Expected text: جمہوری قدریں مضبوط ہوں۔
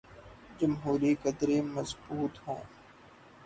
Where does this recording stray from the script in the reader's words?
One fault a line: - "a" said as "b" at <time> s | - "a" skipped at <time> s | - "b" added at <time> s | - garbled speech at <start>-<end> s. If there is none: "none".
none